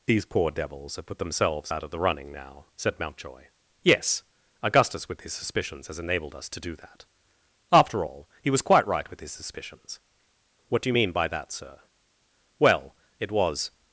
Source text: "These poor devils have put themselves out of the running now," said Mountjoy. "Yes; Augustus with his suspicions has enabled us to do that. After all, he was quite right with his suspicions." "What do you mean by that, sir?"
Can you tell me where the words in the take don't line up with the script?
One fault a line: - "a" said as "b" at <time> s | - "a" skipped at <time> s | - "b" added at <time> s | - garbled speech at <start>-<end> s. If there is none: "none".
- "Well it was" added at 12.6 s